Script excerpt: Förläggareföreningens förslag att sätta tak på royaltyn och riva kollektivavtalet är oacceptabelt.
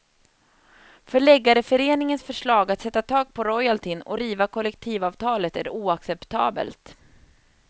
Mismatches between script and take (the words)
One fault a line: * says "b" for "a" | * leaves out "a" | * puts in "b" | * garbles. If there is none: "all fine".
all fine